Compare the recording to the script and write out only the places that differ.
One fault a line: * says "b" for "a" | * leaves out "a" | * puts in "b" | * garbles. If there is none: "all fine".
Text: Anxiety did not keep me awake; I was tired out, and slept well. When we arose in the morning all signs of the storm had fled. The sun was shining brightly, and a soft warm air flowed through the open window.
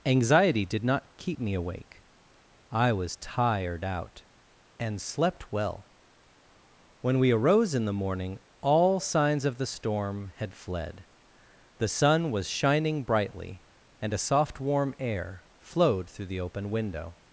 all fine